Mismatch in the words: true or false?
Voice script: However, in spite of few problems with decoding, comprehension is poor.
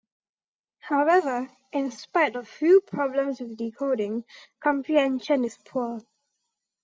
false